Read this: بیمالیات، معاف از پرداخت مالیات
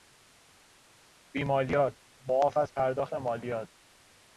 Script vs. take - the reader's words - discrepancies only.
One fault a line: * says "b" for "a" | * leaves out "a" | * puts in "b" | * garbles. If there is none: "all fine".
all fine